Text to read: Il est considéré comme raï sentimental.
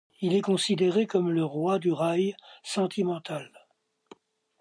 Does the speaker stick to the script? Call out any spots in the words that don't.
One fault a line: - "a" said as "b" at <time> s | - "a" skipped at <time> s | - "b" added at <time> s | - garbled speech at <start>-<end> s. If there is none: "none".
- "le roi du" added at 1.3 s